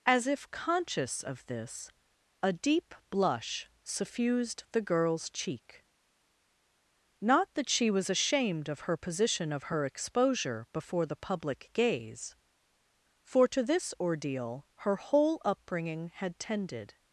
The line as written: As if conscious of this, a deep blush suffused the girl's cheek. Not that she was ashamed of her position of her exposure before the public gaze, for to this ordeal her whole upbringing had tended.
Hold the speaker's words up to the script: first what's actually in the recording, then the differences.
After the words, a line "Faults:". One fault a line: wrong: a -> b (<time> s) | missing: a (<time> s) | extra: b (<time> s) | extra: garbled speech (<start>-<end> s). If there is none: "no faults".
As if conscious of this, a deep blush suffused the girl's cheek. Not that she was ashamed of her position of her exposure before the public gaze, for to this ordeal her whole upbringing had tended.
Faults:
no faults